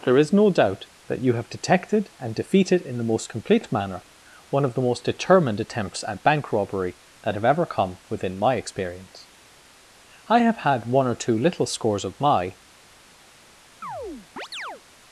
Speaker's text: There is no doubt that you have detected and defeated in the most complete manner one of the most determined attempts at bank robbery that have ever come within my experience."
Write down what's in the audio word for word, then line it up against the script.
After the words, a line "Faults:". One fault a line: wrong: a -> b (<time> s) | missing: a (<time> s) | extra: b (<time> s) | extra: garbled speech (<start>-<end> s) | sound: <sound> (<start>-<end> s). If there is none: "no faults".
There is no doubt that you have detected and defeated in the most complete manner one of the most determined attempts at bank robbery that have ever come within my experience." "I have had one or two little scores of my
Faults:
extra: I have had one or two little scores of my (10.3 s)
sound: chirp (13.8-14.8 s)